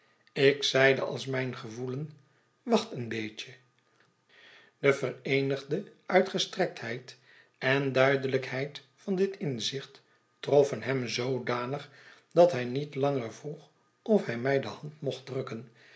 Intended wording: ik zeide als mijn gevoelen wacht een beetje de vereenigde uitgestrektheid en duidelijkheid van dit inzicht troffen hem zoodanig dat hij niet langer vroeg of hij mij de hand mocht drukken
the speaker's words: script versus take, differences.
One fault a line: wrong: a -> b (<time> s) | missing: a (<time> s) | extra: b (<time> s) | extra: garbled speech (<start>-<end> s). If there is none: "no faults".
no faults